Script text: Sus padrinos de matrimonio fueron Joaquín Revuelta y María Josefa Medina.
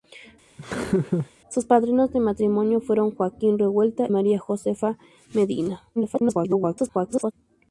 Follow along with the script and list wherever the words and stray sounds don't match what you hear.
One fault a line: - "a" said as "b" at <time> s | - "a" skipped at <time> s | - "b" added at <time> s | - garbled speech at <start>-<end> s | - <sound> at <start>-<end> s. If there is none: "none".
- laugh at 0.6-1.3 s
- "y" skipped at 4.1 s
- garbled speech at 6.0-7.3 s